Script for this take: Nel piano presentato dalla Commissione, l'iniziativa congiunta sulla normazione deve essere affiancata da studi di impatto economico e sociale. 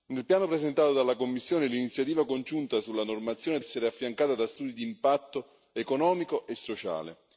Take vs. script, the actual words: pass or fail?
fail